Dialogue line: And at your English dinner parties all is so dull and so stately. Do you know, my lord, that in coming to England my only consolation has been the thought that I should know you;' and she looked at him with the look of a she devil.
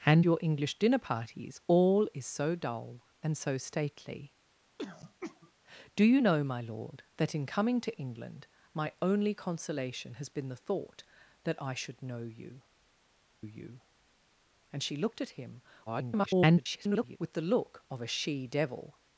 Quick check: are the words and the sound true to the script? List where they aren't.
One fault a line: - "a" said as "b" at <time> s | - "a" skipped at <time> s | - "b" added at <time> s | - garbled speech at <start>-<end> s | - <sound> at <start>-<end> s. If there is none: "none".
- "at" skipped at 0.3 s
- throat clearing at 4.8-5.5 s
- "you" added at 13.4 s
- garbled speech at 15.9-17.2 s